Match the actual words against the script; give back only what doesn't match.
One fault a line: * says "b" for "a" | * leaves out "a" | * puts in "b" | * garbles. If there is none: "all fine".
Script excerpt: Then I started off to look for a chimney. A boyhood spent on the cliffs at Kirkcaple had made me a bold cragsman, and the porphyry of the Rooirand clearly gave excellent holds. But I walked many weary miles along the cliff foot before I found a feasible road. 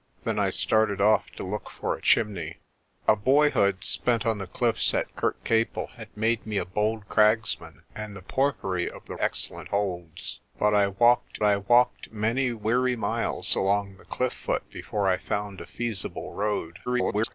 * leaves out "Rooirand clearly gave"
* puts in "I walked"
* garbles